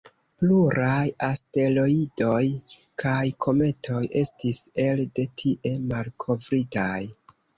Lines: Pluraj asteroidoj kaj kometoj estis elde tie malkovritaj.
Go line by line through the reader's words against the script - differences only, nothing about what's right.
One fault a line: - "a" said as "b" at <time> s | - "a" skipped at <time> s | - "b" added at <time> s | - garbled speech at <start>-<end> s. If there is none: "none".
none